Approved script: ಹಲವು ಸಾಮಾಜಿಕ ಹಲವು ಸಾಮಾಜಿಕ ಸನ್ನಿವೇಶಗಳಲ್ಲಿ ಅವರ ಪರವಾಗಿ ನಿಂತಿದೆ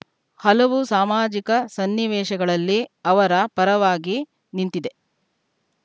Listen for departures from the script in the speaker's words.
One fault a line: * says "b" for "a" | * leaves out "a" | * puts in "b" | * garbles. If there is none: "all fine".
* leaves out "ಹಲವು ಸಾಮಾಜಿಕ"